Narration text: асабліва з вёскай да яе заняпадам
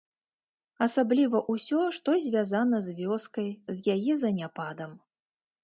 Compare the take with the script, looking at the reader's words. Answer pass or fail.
fail